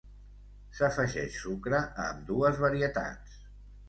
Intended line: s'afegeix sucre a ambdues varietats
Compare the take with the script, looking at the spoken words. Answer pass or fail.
pass